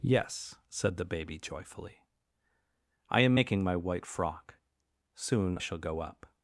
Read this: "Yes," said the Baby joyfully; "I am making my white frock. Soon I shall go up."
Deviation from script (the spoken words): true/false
true